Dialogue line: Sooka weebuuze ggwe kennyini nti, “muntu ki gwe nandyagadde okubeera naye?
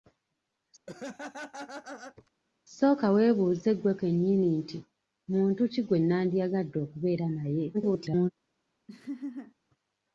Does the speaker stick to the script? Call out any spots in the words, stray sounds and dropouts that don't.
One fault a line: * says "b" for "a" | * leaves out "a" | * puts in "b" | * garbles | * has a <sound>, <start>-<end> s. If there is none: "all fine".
* has a laugh, 0.9-2.3 s
* garbles
* has a laugh, 8.9-9.5 s